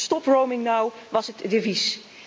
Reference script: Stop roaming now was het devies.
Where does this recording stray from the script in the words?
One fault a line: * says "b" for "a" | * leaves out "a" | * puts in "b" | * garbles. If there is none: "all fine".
all fine